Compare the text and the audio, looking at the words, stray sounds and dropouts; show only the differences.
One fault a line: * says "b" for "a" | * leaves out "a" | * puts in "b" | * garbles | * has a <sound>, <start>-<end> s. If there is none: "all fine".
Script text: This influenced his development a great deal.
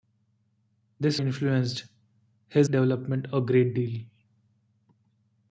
all fine